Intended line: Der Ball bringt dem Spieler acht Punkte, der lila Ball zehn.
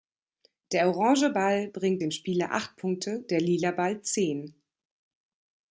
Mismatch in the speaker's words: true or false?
true